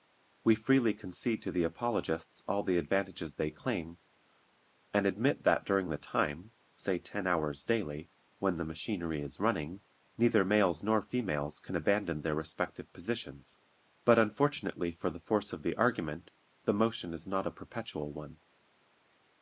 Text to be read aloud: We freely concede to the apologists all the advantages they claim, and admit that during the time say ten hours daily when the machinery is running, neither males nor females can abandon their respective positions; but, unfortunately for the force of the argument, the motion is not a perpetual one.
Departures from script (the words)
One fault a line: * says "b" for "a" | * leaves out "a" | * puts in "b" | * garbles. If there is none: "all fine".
all fine